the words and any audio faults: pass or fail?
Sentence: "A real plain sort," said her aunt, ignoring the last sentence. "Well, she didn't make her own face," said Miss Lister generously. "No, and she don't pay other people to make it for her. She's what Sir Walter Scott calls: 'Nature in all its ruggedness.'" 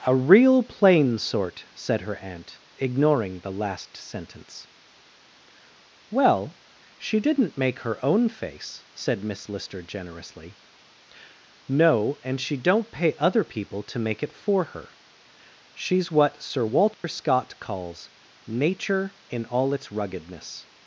fail